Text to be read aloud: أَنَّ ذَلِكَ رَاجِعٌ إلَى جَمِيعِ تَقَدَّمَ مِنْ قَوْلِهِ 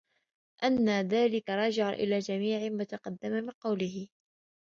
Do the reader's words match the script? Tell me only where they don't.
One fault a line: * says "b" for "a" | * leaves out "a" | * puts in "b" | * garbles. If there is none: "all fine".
* puts in "مَا"